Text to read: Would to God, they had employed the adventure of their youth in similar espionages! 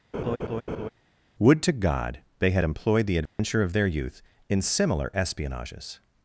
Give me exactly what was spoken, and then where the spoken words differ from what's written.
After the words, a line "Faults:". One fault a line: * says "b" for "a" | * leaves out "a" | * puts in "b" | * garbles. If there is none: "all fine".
Would to God, they had employed the adventure of their youth in similar espionages!
Faults:
all fine